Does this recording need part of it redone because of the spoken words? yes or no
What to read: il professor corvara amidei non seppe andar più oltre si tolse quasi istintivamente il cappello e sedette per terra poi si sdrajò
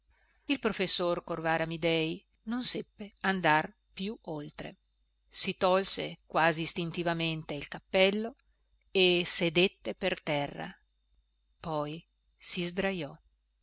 no